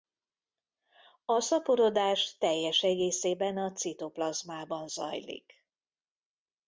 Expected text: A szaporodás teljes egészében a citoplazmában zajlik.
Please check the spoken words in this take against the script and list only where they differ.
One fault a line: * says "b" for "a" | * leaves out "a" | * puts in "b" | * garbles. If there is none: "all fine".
all fine